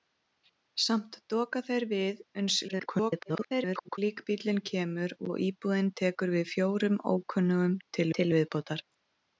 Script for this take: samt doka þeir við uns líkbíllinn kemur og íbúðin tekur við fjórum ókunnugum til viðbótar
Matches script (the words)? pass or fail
fail